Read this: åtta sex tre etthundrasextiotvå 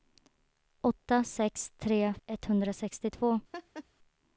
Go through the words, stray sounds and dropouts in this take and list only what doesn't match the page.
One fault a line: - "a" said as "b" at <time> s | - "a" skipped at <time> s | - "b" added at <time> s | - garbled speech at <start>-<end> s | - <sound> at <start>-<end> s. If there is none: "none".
- laugh at 3.5-3.8 s